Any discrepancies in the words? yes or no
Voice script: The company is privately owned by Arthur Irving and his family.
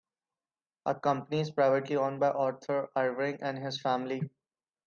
no